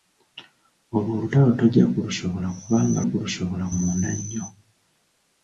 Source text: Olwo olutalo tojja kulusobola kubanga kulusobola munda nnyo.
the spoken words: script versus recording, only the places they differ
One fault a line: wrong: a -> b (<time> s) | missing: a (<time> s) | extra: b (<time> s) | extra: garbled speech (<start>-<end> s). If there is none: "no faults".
no faults